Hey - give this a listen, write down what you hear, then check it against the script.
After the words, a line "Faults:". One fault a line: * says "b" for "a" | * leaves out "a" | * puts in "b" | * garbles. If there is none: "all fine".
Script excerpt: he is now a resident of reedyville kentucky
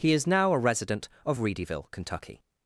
he is now a resident of reedyville kentucky
Faults:
all fine